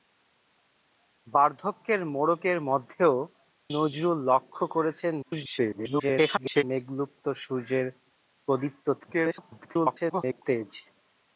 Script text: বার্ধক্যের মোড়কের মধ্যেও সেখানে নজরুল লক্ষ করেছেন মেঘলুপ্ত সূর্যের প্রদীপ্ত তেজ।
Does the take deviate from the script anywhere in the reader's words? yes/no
yes